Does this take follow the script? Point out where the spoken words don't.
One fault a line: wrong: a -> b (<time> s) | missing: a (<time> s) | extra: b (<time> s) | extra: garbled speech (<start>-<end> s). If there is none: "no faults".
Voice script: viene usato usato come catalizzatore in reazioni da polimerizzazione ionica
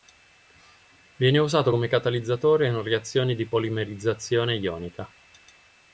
missing: usato (1.7 s)
wrong: da -> di (3.3 s)